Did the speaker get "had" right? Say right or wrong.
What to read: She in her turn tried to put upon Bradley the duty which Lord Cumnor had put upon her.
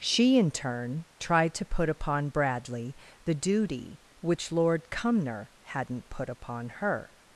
wrong